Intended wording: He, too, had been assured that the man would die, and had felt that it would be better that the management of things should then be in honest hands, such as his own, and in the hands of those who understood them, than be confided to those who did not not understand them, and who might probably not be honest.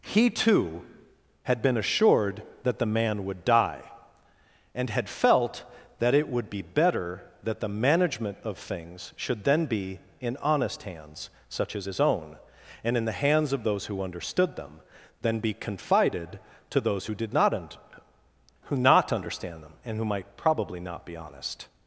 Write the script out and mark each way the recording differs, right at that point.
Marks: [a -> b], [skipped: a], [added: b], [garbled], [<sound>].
He, too, had been assured that the man would die, and had felt that it would be better that the management of things should then be in honest hands, such as his own, and in the hands of those who understood them, than be confided to those who did not [added: un who] not understand them, and who might probably not be honest.